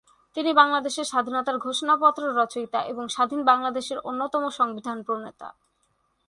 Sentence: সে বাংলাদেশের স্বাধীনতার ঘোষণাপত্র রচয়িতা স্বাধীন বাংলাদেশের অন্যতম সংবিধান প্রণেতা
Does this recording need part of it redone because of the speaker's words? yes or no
yes